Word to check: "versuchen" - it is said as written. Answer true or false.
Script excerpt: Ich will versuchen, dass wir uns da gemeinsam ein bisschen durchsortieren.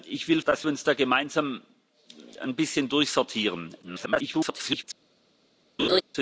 false